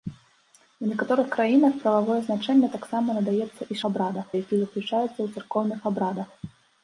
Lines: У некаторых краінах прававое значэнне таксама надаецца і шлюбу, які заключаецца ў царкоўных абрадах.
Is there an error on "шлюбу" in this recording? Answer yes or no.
yes